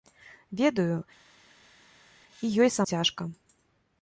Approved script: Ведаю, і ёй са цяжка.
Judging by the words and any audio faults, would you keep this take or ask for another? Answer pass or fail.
pass